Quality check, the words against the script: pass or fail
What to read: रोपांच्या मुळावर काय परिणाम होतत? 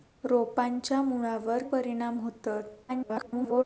fail